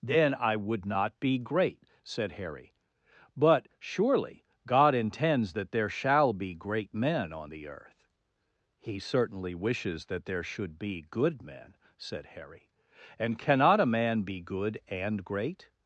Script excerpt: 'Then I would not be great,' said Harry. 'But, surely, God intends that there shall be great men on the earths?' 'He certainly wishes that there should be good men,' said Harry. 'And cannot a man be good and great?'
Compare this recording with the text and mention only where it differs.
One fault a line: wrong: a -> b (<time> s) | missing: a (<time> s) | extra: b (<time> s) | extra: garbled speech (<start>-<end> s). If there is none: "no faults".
wrong: earths -> earth (7.7 s)